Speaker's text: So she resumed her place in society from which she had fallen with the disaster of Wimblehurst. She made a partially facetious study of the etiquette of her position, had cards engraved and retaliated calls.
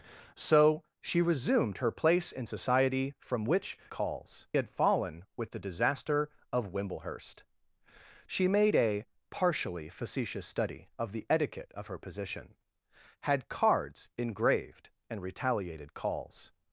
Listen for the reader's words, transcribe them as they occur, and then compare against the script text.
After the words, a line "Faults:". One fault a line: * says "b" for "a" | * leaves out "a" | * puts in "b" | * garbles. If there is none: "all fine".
So she resumed her place in society from which calls had fallen with the disaster of Wimblehurst. She made a partially facetious study of the etiquette of her position, had cards engraved and retaliated calls.
Faults:
* says "calls" for "she"